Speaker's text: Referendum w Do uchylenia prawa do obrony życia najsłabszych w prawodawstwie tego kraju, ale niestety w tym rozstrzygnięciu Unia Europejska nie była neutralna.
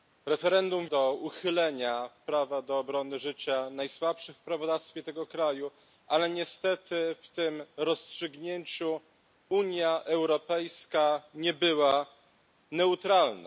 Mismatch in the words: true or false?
false